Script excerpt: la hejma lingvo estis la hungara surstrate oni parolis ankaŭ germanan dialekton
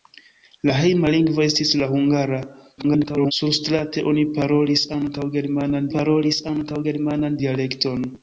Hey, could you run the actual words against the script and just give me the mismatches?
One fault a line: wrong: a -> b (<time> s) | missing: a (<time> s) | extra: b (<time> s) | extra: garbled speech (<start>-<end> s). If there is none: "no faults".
extra: garbled speech (2.8-3.3 s)
extra: parolis ankaŭ germanan (5.9 s)